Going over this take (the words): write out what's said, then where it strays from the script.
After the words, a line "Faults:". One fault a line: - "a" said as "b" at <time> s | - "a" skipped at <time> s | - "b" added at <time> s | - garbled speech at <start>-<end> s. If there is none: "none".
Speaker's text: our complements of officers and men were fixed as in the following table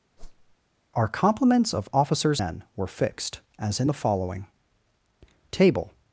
our complements of officers men were fixed as in the following table
Faults:
- "and" skipped at 2.4 s